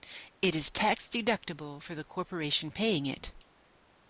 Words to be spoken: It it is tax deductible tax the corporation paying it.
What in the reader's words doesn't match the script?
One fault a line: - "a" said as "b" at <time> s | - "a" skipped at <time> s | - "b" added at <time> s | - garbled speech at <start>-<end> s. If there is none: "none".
- "it" skipped at 0.6 s
- "tax" said as "for" at 1.8 s